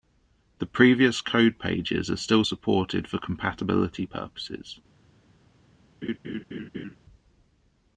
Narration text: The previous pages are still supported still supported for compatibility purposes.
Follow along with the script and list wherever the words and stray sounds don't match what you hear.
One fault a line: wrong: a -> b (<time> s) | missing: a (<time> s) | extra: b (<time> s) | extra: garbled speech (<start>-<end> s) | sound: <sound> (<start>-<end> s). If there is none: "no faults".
extra: code (1.2 s)
missing: still supported (3.1 s)
sound: laugh (6.0-7.0 s)